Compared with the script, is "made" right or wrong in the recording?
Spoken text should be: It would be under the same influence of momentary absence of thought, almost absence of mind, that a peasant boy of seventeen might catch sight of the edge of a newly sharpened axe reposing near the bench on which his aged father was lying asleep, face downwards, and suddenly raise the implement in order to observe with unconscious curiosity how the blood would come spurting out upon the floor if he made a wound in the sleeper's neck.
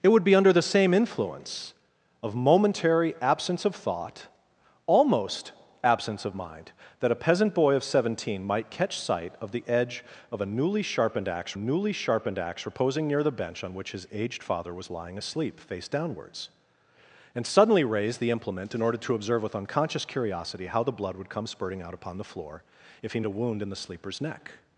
wrong